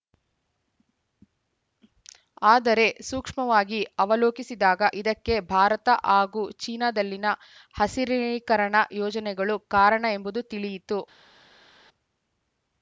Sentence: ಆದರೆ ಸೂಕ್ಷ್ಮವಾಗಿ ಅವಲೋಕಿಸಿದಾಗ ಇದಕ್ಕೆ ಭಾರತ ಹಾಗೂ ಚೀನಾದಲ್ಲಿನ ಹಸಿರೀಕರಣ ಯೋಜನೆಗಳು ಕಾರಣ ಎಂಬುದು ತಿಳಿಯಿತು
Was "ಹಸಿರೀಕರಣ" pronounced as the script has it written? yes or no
yes